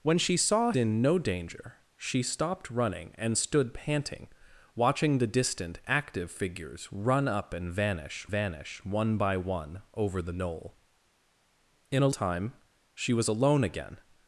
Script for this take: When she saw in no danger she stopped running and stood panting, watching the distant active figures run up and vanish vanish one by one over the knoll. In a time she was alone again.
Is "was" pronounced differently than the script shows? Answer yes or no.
no